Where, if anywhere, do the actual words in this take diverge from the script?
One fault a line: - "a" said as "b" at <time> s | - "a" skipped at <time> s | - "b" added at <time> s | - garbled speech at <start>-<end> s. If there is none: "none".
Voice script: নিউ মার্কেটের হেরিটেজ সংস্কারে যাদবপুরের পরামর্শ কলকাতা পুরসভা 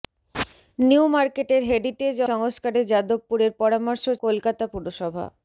none